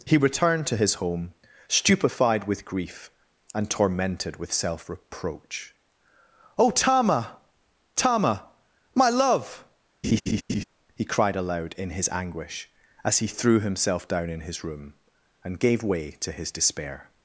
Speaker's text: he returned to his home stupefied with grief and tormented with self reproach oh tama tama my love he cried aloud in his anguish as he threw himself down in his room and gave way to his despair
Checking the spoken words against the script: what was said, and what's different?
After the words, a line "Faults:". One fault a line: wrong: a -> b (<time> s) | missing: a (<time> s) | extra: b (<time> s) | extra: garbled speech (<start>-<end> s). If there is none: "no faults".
he returned to his home stupefied with grief and tormented with self reproach oh tama tama my love he cried aloud in his anguish as he threw himself down in his room and gave way to his despair
Faults:
no faults